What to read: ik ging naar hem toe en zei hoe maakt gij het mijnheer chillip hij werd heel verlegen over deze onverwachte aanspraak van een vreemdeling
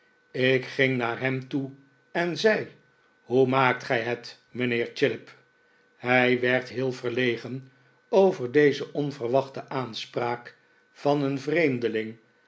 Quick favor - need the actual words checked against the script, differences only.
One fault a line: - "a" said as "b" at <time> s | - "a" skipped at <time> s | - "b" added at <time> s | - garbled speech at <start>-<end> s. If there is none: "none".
none